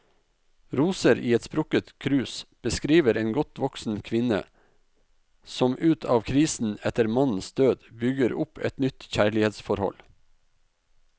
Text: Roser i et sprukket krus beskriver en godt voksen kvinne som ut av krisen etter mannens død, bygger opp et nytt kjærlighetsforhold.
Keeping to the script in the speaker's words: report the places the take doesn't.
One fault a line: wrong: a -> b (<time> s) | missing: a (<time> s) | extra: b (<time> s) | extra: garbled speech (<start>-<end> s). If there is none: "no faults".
no faults